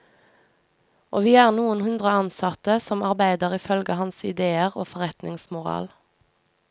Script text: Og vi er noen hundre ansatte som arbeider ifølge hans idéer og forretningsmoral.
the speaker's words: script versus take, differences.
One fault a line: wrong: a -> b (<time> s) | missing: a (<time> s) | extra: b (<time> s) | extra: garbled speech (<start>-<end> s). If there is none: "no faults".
no faults